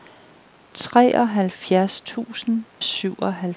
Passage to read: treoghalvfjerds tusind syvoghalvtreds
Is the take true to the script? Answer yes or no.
yes